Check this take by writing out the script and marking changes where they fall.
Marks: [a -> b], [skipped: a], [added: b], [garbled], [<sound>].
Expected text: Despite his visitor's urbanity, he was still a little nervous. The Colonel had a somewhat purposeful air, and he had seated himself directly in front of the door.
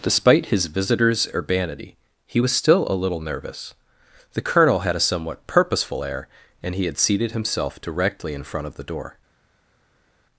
Despite his visitor's urbanity, he was still a little nervous. The Colonel had a somewhat purposeful air, and he had seated himself directly in front of the door.